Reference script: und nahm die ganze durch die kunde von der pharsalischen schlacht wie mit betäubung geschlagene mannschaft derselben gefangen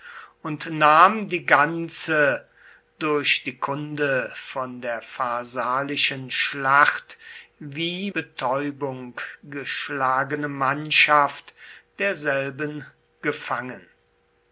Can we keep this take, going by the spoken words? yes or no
no